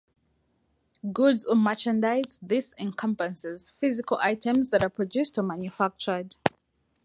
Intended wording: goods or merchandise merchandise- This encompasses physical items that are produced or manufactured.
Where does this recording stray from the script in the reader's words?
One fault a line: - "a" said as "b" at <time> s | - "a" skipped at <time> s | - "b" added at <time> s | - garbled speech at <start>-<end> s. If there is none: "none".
- "merchandise" skipped at 2.4 s